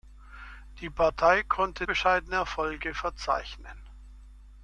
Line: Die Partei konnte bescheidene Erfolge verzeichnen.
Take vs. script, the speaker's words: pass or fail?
pass